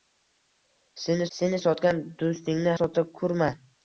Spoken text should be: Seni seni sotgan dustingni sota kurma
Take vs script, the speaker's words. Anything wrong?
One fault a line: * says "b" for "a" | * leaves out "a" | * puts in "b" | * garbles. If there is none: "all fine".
all fine